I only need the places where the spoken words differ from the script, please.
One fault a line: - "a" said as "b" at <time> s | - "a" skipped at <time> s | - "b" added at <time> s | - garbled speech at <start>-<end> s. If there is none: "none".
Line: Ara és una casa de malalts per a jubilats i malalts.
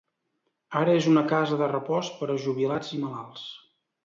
- "malalts" said as "repòs" at 1.7 s